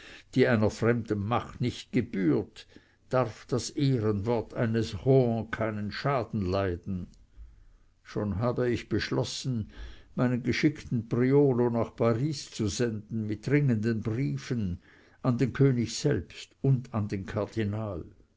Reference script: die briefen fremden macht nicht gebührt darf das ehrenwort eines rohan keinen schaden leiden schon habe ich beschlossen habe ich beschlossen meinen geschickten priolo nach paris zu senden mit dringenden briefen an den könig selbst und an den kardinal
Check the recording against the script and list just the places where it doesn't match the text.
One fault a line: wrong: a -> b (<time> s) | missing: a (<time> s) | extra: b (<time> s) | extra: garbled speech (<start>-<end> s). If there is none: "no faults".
wrong: briefen -> einer (0.5 s)
missing: habe ich beschlossen (9.7 s)